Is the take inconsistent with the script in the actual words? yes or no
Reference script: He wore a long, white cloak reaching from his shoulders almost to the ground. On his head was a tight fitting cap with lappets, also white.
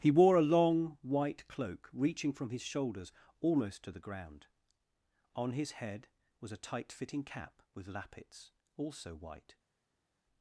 no